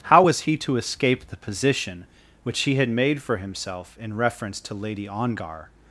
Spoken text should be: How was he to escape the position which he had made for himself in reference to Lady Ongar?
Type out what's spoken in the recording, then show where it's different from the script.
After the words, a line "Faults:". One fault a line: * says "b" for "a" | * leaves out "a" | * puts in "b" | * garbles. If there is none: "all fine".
How was he to escape the position which he had made for himself in reference to Lady Ongar?
Faults:
all fine